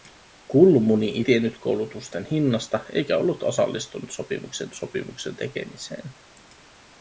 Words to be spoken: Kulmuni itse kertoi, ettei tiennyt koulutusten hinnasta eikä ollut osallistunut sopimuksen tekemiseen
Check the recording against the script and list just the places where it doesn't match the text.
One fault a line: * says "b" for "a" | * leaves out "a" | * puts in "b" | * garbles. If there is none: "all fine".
* leaves out "itse kertoi ettei"
* puts in "sopimuksen"